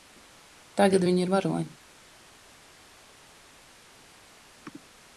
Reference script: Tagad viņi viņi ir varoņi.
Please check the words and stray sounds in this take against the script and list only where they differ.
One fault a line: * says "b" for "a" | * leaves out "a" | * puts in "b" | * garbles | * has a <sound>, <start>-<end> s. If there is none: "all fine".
* leaves out "viņi"